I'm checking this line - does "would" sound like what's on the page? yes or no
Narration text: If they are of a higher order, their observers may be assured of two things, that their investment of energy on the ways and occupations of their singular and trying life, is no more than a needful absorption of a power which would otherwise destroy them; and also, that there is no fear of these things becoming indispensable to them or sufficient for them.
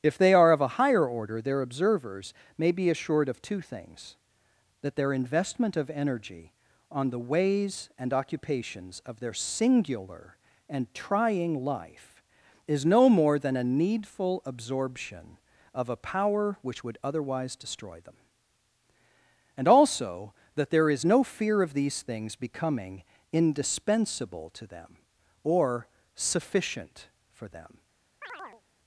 yes